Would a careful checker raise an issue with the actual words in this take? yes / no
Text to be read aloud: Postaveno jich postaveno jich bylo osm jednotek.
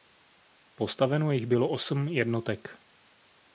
yes